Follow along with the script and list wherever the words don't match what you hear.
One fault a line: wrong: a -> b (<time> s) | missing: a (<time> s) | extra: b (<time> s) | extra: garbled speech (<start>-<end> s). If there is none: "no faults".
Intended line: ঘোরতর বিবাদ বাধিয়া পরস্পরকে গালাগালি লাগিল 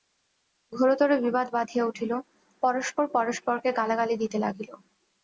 extra: উঠিল পরস্পর (1.9 s)
extra: দিতে (4.2 s)